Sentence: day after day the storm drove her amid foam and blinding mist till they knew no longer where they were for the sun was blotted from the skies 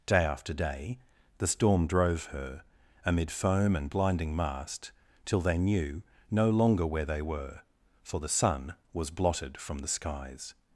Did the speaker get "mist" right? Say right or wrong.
wrong